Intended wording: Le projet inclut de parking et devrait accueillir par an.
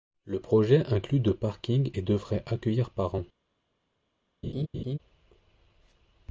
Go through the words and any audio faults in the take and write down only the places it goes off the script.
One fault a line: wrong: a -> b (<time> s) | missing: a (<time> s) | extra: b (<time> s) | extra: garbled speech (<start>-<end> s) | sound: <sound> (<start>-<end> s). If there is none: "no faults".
sound: laugh (4.4-5.0 s)